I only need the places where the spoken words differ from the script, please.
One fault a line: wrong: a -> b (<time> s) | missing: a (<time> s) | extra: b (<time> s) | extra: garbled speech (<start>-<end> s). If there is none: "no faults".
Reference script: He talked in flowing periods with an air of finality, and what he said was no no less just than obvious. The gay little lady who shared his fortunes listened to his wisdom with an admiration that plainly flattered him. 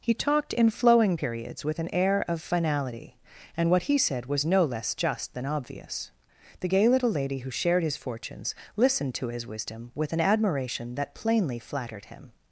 missing: no (4.6 s)